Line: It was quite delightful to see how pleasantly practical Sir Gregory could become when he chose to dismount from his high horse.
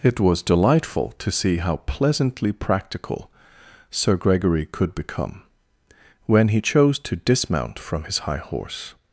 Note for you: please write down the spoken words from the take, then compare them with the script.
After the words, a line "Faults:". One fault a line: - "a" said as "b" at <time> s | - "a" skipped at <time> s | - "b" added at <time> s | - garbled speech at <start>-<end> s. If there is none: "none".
It was delightful to see how pleasantly practical Sir Gregory could become when he chose to dismount from his high horse.
Faults:
- "quite" skipped at 0.4 s